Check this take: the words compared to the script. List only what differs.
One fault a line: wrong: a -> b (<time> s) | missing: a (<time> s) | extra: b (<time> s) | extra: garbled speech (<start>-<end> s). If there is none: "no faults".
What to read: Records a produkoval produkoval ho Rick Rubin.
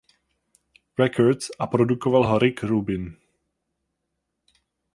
missing: produkoval (2.2 s)